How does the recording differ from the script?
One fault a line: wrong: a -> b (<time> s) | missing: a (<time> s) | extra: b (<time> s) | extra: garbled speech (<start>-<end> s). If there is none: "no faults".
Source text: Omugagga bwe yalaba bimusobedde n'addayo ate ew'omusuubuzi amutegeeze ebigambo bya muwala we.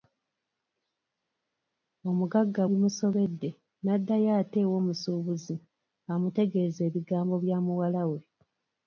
missing: bwe yalaba (2.6 s)